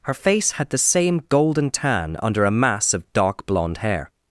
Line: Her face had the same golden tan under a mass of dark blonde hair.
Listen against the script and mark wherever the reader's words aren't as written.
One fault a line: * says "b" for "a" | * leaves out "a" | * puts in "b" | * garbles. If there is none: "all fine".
all fine